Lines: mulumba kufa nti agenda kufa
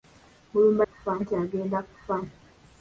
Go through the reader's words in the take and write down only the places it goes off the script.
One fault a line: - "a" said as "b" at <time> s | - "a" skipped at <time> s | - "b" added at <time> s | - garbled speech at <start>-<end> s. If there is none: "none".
none